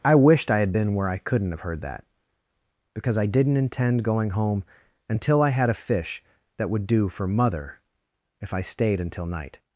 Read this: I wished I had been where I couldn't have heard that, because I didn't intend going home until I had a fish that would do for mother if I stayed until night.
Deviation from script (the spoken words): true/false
false